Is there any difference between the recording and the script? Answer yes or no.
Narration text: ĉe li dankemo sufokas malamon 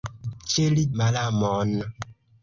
yes